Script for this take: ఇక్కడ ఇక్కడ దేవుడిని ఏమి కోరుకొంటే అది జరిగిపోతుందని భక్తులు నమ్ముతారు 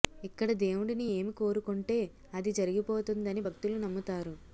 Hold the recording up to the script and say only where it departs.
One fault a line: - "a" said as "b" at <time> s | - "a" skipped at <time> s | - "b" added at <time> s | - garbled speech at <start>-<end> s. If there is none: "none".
- "ఇక్కడ" skipped at 0.5 s